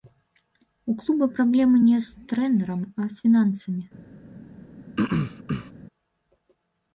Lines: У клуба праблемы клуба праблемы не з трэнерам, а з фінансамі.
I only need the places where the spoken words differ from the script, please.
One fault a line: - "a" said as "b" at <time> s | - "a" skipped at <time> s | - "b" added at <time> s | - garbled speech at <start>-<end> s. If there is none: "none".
- "клуба праблемы" skipped at 1.8 s